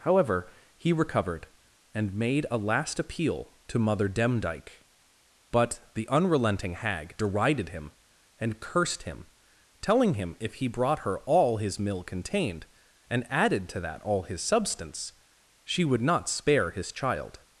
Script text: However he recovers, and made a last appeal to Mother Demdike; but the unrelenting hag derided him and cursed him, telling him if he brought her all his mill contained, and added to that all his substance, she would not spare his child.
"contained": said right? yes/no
yes